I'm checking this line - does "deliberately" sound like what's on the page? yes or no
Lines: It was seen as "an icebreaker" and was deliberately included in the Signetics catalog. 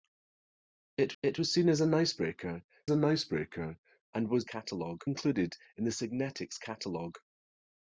no